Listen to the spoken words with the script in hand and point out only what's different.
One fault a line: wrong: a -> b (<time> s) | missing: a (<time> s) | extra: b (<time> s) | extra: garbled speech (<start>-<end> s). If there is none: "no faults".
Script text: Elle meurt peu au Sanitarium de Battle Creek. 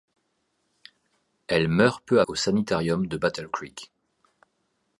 no faults